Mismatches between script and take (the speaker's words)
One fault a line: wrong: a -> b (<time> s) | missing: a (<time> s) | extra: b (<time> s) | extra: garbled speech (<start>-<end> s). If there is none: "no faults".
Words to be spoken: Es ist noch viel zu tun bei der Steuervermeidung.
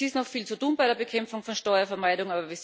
extra: Bekämpfung von (0.9 s)